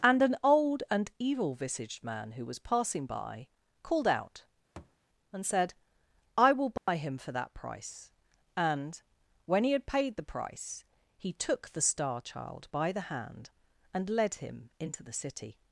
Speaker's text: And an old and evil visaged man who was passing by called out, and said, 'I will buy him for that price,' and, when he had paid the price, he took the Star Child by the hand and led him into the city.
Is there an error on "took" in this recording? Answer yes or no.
no